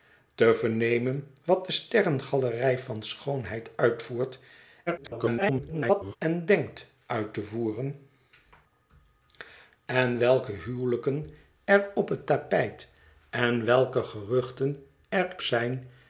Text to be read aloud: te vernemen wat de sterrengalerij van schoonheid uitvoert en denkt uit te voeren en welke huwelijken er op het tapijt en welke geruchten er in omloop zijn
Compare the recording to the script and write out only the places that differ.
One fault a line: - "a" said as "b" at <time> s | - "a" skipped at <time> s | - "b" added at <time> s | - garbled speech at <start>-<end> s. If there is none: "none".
- garbled speech at 4.9-6.2 s
- "in omloop" skipped at 15.4 s